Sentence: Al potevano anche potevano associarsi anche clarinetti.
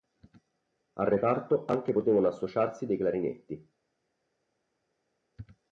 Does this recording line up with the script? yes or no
no